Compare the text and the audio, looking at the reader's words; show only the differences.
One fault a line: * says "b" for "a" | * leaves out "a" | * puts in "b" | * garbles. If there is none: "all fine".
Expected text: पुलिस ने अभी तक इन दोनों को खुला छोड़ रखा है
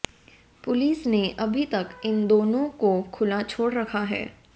all fine